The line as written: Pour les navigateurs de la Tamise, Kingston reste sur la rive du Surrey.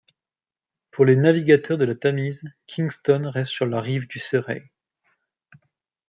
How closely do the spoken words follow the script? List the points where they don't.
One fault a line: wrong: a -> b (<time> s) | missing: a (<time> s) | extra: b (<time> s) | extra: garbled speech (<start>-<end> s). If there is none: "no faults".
no faults